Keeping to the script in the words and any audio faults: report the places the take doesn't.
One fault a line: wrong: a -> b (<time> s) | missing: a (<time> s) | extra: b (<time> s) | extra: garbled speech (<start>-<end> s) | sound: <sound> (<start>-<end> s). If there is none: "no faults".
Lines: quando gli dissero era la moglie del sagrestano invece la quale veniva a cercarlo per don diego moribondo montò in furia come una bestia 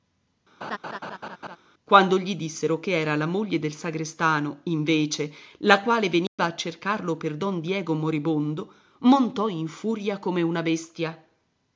sound: laugh (0.6-1.6 s)
extra: che (2.8 s)
sound: dropout (6.3-6.4 s)